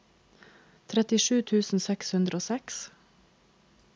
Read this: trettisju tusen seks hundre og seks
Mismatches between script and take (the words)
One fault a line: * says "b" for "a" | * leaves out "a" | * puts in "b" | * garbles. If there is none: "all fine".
all fine